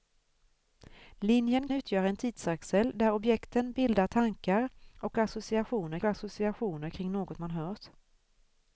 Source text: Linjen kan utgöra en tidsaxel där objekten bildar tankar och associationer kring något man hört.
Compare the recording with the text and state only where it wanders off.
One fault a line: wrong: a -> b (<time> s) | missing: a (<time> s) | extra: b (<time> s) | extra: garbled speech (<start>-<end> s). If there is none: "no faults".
missing: kan (1.7 s)
extra: associationer (6.0 s)